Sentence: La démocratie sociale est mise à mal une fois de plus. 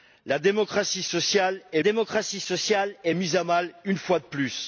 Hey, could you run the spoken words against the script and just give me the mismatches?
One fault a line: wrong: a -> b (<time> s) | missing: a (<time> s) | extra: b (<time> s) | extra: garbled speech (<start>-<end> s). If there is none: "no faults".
extra: démocratie sociale est (1.8 s)